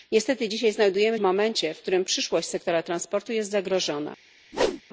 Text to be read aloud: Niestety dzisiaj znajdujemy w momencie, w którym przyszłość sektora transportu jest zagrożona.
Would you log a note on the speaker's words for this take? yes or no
no